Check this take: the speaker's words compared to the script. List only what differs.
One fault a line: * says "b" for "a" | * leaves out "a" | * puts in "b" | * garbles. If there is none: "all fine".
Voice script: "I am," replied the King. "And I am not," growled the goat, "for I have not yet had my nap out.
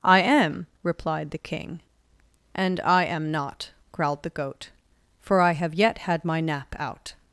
* leaves out "not"